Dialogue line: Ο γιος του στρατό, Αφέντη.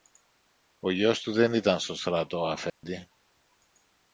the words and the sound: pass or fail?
fail